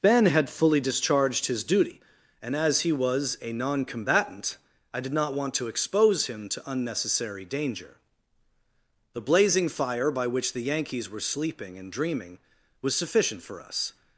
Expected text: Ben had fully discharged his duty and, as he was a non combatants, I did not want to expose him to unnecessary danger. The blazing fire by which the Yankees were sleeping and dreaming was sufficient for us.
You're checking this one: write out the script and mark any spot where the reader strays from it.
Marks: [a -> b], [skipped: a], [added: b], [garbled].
Ben had fully discharged his duty and, as he was a non [combatants, -> combatant] I did not want to expose him to unnecessary danger. The blazing fire by which the Yankees were sleeping and dreaming was sufficient for us.